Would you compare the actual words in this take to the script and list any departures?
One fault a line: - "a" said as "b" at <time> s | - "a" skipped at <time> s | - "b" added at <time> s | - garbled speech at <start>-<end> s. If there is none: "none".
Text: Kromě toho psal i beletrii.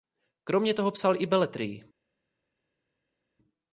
none